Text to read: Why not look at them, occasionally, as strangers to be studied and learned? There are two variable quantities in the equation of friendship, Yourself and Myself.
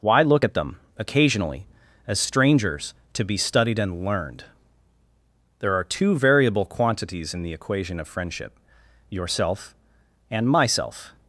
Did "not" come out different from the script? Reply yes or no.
yes